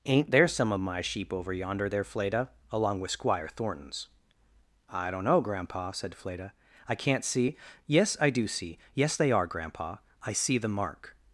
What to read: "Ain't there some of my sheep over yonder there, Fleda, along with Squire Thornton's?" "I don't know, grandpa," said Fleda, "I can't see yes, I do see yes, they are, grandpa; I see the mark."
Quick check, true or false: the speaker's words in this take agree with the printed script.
true